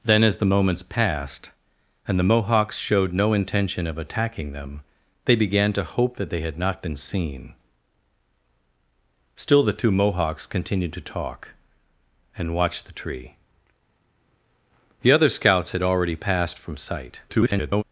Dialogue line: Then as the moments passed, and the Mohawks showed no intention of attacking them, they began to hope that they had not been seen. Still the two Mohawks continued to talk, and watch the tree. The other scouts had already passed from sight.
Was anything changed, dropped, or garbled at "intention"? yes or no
no